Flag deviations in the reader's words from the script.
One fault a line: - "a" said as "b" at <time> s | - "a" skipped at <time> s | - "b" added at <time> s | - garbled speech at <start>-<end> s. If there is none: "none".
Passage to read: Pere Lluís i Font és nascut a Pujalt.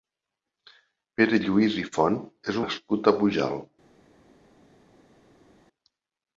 none